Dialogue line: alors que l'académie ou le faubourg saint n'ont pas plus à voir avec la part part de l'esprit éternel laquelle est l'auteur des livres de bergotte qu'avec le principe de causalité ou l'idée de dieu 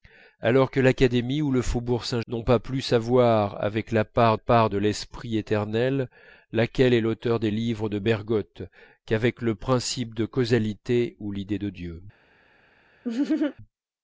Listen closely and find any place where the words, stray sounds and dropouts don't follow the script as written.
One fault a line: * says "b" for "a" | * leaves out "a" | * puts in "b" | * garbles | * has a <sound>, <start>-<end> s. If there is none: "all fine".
* has a laugh, 13.0-13.6 s